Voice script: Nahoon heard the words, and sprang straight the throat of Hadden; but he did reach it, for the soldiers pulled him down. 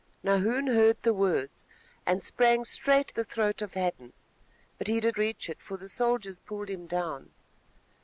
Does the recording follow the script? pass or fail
pass